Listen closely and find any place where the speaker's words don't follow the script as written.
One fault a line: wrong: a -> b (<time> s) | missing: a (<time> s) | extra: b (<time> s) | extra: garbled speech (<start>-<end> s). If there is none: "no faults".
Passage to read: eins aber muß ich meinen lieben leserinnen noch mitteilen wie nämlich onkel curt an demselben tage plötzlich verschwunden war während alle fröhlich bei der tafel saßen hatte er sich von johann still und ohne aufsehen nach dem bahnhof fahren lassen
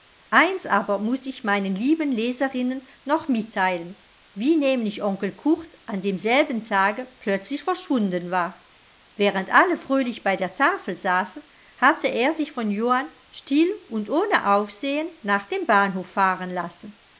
no faults